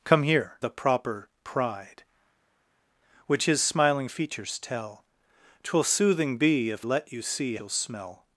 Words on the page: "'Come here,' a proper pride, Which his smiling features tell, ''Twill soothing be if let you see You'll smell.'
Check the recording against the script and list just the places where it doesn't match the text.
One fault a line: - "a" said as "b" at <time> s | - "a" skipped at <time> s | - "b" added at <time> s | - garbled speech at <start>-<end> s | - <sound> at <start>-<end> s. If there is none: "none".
none